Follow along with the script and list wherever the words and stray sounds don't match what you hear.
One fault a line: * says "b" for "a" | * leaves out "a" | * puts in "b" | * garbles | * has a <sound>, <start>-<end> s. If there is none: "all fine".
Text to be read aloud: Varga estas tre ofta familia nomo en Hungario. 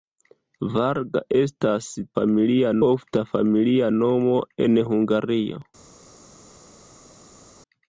* says "familia" for "tre"